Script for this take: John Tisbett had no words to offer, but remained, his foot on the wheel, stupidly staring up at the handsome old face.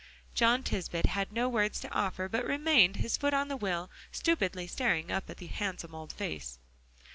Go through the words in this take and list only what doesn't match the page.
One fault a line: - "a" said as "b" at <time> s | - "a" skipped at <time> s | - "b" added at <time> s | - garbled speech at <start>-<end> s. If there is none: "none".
none